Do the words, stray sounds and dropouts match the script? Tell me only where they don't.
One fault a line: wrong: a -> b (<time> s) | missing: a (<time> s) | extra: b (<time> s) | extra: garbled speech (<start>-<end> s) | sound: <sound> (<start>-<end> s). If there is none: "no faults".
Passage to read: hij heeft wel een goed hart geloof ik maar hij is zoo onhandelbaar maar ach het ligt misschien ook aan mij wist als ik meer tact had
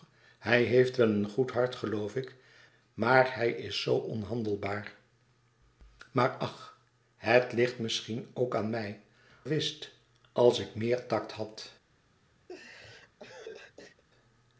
sound: laugh (12.5-14.0 s)